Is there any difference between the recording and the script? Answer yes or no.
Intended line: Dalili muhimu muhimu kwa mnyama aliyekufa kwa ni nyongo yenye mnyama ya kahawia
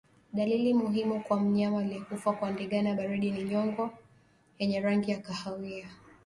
yes